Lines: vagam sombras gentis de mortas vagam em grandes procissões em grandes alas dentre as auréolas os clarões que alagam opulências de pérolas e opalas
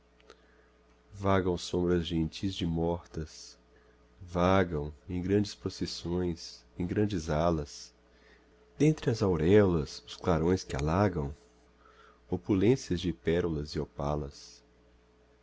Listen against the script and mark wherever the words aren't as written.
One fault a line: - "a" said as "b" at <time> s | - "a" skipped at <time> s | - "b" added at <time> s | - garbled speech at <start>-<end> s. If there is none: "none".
none